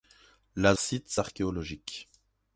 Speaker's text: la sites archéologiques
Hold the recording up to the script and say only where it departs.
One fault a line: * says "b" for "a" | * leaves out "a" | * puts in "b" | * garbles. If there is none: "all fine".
all fine